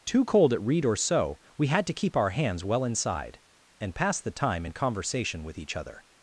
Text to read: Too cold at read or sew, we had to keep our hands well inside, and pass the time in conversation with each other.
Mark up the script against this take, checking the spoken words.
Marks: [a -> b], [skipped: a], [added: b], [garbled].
Too cold at read or sew, we had to keep our hands well inside, and pass the time in conversation with each other.